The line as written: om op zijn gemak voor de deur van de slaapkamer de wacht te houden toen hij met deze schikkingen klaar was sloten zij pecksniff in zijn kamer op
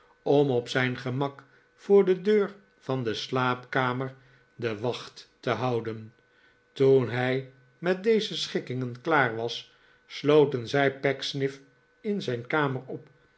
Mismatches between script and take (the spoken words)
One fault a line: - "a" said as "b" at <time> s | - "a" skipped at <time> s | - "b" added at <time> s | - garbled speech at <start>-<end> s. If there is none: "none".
none